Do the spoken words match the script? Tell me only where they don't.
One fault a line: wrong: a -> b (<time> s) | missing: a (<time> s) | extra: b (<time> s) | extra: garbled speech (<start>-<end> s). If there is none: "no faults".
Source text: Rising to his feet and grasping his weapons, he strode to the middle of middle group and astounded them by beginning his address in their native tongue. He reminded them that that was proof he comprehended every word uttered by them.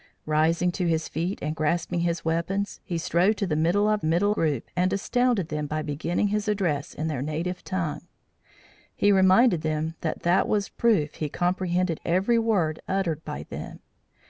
no faults